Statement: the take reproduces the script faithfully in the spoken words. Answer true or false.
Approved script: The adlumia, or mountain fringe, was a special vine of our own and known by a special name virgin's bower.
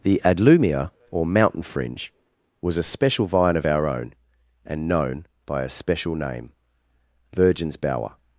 true